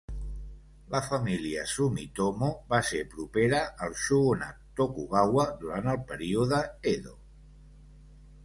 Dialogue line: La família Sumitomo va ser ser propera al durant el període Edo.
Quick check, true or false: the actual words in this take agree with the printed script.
false